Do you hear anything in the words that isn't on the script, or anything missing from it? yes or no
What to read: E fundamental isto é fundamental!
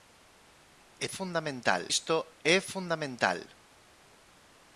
no